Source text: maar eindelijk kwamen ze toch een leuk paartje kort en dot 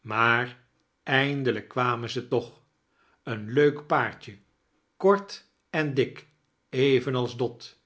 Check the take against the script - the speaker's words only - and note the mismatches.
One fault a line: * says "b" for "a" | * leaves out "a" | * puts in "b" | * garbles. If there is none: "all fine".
* puts in "dik evenals"